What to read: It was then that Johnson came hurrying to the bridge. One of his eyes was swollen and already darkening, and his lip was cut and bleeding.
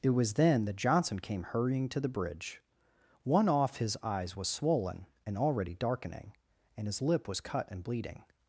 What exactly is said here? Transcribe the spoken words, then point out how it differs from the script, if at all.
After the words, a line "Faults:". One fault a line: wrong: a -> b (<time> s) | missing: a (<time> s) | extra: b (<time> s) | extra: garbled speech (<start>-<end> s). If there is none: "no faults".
It was then that Johnson came hurrying to the bridge. One off his eyes was swollen and already darkening, and his lip was cut and bleeding.
Faults:
wrong: of -> off (3.5 s)